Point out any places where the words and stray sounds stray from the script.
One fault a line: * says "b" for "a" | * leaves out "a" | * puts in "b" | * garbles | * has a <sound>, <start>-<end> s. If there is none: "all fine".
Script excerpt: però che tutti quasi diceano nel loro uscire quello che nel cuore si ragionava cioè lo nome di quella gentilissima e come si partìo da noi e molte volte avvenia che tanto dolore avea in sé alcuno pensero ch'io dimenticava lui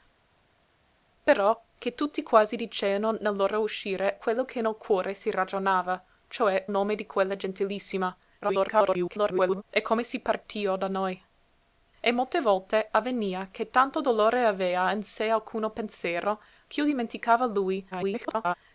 * leaves out "lo"
* garbles
* garbles